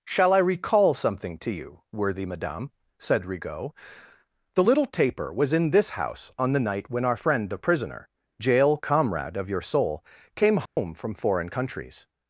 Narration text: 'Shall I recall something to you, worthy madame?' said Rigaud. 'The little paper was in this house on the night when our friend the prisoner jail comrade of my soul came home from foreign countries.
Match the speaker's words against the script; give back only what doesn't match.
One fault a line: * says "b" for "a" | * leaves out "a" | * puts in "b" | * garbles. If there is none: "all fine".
* says "taper" for "paper"
* says "your" for "my"